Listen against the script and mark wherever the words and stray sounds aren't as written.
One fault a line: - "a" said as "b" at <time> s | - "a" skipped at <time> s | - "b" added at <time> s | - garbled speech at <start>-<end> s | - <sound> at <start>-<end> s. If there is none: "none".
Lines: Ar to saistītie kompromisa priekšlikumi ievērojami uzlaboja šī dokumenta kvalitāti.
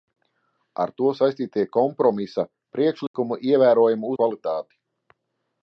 - dropout at 3.1-3.1 s
- "uzlaboja šī dokumenta" skipped at 4.1 s